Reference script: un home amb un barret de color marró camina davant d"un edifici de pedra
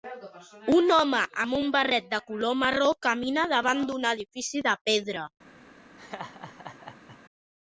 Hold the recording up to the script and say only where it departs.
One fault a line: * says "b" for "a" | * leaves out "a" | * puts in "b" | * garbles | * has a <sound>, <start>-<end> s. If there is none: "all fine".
* has a laugh, 6.0-7.2 s